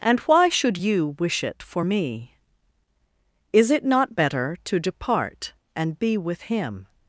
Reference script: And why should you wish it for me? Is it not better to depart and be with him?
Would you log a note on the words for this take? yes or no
no